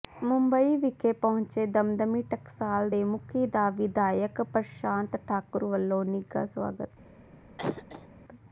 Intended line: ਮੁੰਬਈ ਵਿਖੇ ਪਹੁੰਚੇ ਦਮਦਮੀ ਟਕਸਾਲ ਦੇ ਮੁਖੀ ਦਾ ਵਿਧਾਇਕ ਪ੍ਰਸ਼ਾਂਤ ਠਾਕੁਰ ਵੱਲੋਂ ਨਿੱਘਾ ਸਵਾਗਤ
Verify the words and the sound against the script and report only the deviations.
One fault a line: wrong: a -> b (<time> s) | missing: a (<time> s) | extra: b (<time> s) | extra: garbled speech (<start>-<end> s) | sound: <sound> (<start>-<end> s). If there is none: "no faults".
sound: cough (7.6-8.1 s)